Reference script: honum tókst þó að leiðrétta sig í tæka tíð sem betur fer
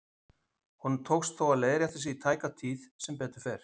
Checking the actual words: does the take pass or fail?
pass